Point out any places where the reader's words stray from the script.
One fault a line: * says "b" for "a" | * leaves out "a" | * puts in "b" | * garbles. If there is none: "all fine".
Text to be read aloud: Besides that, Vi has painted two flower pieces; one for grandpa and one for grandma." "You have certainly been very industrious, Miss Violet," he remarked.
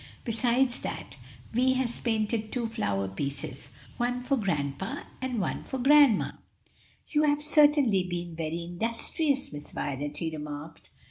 all fine